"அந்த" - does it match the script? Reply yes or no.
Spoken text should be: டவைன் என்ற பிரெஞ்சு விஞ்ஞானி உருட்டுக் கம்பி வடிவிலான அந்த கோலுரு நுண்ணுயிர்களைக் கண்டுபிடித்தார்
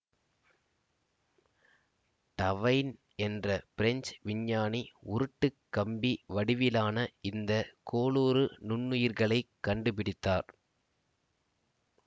no